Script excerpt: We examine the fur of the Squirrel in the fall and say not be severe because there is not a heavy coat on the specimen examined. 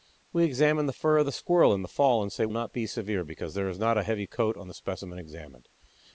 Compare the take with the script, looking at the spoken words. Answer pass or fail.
pass